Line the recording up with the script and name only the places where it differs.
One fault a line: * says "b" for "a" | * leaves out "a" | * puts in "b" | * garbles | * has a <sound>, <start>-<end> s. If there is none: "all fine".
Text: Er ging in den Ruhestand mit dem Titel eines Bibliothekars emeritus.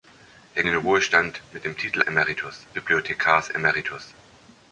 * leaves out "ging in"
* says "emeritus" for "eines"